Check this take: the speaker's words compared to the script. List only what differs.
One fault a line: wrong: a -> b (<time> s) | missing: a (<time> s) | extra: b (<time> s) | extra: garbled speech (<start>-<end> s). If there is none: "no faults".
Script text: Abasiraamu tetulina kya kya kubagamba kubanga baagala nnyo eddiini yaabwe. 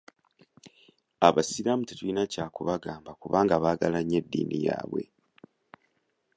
missing: kya (2.5 s)